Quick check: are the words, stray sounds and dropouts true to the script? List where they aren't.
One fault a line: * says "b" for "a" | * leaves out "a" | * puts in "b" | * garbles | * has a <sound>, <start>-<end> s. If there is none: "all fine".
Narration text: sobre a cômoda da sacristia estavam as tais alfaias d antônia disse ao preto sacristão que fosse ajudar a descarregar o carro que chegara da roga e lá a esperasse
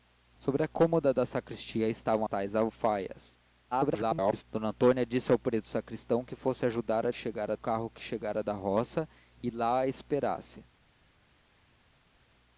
* leaves out "as"
* garbles
* says "chegara" for "descarregar"